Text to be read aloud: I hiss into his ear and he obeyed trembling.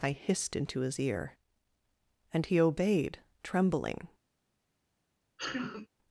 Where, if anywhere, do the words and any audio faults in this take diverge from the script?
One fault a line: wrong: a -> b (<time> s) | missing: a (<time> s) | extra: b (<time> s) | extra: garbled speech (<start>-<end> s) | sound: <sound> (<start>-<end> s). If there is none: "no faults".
wrong: hiss -> hissed (0.1 s)
sound: sneeze (5.4-5.9 s)